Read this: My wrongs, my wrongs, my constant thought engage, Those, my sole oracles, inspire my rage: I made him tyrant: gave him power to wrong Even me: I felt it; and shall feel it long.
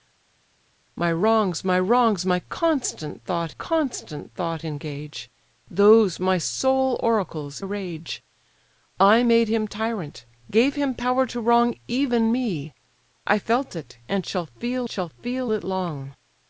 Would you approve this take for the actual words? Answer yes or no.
no